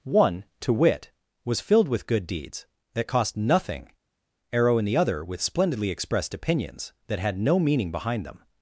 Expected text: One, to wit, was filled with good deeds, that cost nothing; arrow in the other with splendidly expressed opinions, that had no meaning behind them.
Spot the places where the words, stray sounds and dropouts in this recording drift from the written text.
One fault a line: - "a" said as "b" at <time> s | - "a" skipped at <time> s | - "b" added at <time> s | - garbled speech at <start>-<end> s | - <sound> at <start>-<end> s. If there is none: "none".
none